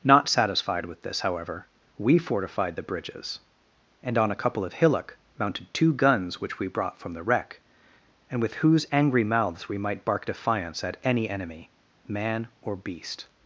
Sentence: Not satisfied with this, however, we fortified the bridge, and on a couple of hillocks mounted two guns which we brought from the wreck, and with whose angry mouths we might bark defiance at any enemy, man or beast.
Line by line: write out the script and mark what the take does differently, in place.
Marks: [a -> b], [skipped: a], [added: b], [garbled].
Not satisfied with this, however, we fortified the [bridge, -> bridges] and on a couple of [hillocks -> hillock] mounted two guns which we brought from the wreck, and with whose angry mouths we might bark defiance at any enemy, man or beast.